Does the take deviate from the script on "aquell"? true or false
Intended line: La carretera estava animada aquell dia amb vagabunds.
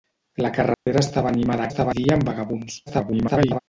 true